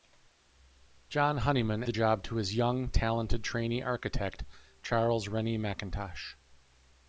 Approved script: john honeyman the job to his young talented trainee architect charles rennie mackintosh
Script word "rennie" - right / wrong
right